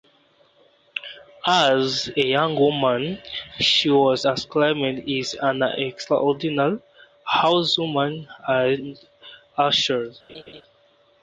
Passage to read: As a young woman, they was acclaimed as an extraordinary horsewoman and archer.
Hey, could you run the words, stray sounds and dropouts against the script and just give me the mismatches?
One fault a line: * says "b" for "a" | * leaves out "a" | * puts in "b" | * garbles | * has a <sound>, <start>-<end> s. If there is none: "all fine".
* says "she" for "they"
* has a laugh, 10.3-10.6 s